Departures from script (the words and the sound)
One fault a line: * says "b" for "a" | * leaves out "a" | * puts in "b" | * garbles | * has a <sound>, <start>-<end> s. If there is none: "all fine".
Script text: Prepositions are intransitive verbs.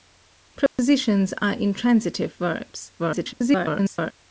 * has a dropout, 0.7-0.8 s
* garbles